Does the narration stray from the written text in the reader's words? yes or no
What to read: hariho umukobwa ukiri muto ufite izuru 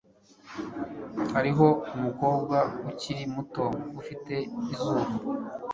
no